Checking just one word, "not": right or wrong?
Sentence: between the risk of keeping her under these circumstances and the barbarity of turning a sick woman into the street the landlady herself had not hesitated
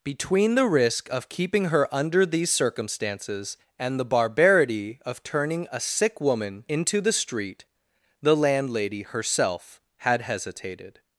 wrong